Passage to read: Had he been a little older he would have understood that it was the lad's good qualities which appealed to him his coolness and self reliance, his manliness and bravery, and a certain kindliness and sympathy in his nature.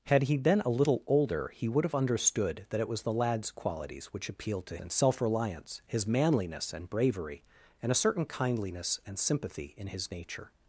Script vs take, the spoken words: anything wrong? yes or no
yes